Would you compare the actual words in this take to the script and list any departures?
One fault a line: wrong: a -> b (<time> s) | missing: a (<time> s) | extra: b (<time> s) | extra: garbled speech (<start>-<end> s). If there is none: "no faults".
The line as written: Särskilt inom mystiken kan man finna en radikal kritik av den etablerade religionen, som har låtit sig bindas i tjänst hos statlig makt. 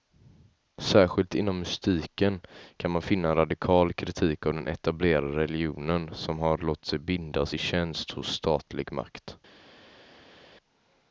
no faults